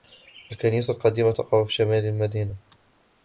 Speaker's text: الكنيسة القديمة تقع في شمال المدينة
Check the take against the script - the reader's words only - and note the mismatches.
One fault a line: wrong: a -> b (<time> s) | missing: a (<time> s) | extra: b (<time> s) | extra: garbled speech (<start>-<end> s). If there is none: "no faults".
no faults